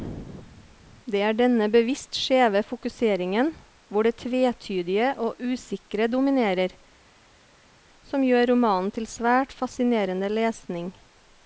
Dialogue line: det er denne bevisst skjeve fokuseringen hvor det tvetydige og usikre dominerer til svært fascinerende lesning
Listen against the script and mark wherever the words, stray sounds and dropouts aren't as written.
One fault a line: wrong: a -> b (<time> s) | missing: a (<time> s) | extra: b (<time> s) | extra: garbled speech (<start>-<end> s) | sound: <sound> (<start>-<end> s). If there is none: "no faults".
extra: som gjør romanen (8.1 s)